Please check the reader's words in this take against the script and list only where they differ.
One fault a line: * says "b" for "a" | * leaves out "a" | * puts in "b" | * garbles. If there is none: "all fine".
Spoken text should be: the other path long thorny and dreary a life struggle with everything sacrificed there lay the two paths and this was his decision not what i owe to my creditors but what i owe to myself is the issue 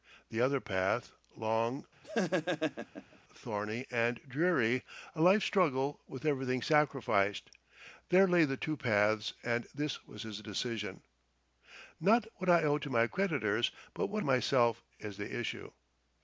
* leaves out "i owe to"